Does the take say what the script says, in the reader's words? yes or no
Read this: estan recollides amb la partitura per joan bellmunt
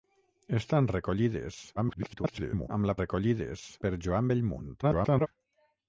no